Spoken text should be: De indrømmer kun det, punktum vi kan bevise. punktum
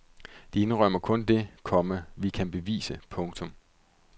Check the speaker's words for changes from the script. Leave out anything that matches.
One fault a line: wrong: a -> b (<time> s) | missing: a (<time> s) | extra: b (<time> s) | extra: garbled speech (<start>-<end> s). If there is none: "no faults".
wrong: punktum -> komma (1.6 s)